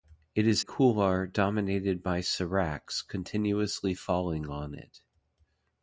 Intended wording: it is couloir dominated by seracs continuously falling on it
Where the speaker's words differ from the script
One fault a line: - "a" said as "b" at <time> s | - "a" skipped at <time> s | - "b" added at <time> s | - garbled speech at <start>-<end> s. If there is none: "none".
none